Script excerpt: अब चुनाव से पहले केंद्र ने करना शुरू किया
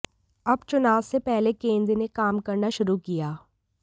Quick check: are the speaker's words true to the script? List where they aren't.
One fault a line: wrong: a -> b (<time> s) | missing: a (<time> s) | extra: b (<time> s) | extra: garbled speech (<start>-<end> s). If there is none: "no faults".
extra: काम (2.1 s)